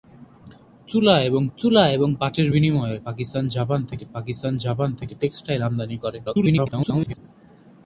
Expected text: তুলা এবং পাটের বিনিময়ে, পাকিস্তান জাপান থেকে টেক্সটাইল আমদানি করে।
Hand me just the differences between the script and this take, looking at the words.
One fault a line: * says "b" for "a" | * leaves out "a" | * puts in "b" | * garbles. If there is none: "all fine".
* puts in "তুলা এবং"
* puts in "পাকিস্তান জাপান থেকে"
* garbles